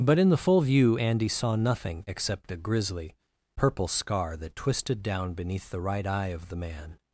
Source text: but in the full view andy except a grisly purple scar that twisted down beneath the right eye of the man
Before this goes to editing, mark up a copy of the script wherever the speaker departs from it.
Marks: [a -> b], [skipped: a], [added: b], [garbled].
but in the full view andy [added: saw nothing] except a grisly purple scar that twisted down beneath the right eye of the man